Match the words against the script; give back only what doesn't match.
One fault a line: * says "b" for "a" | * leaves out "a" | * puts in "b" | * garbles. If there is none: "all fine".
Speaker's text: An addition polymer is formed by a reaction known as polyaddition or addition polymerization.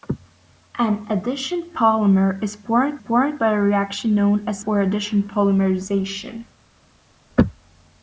* puts in "formed"
* leaves out "polyaddition"